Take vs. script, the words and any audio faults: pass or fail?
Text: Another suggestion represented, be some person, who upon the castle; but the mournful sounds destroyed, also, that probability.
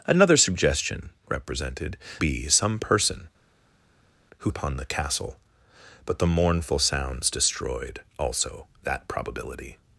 pass